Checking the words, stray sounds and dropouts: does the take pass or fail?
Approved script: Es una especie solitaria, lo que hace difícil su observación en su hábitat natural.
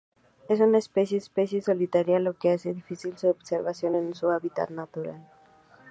fail